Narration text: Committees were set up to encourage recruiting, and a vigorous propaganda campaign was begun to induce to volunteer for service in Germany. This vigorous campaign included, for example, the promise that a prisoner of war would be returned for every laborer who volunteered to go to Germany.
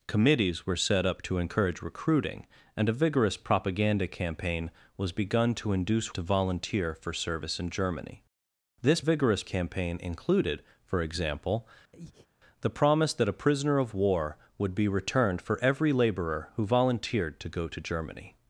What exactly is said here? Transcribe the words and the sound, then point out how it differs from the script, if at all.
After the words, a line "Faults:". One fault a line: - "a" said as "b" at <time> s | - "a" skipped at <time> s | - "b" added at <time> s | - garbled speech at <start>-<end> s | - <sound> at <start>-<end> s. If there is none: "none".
Committees were set up to encourage recruiting, and a vigorous propaganda campaign was begun to induce to volunteer for service in Germany. This vigorous campaign included, for example, the promise that a prisoner of war would be returned for every laborer who volunteered to go to Germany.
Faults:
- breath at 11.9-12.3 s